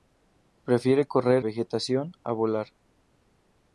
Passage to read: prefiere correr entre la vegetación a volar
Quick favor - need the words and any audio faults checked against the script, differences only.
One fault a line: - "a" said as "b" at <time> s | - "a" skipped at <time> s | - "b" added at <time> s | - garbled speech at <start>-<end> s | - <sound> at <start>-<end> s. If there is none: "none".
- "entre la" skipped at 1.4 s